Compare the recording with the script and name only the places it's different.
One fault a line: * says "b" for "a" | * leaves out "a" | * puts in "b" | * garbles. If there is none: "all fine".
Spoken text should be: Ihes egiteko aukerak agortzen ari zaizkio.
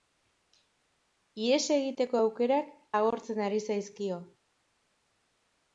all fine